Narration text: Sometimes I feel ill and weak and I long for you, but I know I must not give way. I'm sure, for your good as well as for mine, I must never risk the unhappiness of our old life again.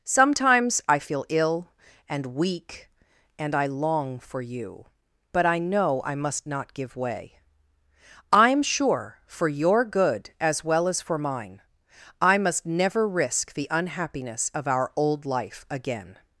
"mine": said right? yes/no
yes